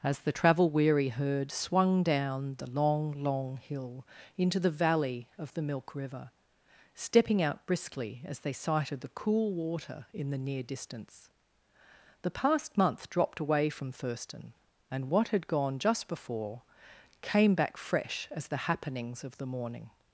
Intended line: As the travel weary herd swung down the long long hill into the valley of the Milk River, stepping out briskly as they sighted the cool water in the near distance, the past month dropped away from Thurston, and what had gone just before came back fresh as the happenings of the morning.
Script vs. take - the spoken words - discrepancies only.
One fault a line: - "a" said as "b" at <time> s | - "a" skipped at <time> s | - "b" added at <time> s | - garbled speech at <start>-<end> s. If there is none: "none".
none